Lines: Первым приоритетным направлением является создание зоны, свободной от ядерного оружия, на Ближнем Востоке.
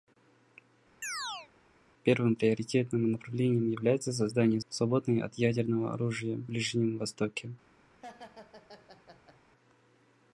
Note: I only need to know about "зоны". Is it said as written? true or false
false